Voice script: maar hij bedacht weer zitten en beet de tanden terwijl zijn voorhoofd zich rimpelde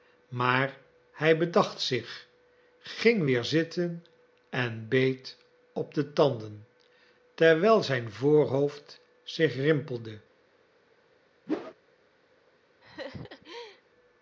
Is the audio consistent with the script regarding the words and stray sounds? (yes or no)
no